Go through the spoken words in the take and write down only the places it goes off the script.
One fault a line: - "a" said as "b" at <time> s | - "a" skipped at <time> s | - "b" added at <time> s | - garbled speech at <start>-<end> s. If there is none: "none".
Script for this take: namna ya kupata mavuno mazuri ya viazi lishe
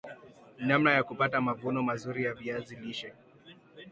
none